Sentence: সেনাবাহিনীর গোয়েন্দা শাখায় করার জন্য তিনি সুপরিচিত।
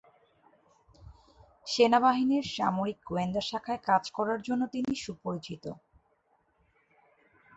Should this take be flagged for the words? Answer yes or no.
yes